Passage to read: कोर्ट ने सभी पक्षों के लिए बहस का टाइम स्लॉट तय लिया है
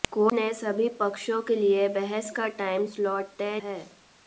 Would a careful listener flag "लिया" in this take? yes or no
yes